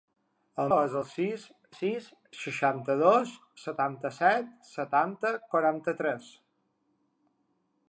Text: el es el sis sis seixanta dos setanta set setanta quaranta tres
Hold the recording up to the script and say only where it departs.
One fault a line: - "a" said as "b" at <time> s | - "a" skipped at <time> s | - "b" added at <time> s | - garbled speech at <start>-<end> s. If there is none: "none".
none